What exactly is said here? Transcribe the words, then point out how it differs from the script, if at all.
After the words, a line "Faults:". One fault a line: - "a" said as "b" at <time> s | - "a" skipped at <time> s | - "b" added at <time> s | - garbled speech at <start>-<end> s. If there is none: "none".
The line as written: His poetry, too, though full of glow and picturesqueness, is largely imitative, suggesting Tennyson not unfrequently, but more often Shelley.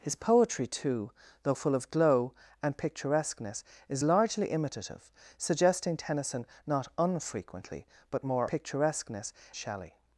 His poetry, too, though full of glow and picturesqueness, is largely imitative, suggesting Tennyson not unfrequently, but more picturesqueness Shelley.
Faults:
- "often" said as "picturesqueness" at 8.5 s